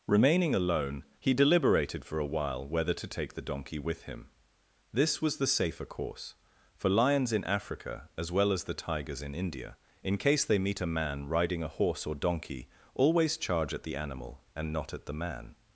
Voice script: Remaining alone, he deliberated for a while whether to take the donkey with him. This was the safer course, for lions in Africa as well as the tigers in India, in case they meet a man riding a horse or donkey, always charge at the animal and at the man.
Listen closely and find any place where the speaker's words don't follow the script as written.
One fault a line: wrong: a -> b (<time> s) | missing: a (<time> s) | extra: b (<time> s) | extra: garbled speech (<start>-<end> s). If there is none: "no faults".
extra: not (14.7 s)